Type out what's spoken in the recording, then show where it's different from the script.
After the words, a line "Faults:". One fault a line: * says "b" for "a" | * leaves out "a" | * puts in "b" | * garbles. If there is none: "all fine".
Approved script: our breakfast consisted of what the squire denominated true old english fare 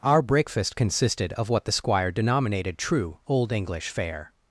our breakfast consisted of what the squire denominated true old english fare
Faults:
all fine